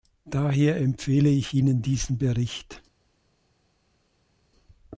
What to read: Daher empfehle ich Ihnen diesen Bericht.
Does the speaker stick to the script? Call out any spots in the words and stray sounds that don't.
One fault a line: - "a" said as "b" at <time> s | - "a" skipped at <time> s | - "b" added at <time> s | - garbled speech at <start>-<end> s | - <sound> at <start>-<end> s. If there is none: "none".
none